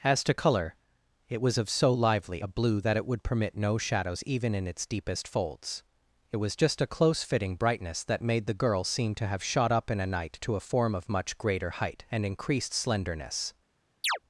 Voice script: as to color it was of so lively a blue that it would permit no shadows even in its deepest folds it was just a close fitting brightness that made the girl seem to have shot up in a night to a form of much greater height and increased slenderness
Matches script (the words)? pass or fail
pass